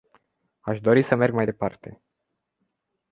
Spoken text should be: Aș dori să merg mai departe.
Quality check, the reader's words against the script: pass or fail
pass